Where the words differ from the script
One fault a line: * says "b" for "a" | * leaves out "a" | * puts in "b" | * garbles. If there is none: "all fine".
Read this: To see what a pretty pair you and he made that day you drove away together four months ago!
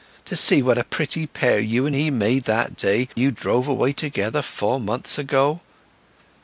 all fine